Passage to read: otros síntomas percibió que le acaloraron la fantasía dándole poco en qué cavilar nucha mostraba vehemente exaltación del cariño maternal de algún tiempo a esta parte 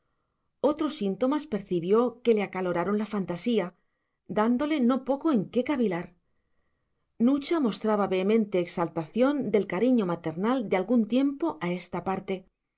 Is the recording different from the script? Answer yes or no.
yes